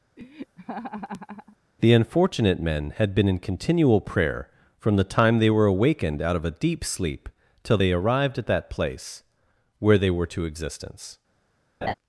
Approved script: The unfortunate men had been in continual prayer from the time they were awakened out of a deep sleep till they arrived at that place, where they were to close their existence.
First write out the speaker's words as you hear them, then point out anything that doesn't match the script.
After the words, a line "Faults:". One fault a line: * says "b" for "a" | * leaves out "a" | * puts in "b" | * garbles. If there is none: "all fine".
The unfortunate men had been in continual prayer from the time they were awakened out of a deep sleep till they arrived at that place, where they were to existence.
Faults:
* leaves out "close their"